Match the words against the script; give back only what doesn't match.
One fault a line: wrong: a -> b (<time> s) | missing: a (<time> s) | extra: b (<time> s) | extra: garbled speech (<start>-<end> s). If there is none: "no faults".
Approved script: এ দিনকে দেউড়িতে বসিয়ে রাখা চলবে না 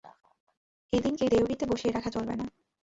no faults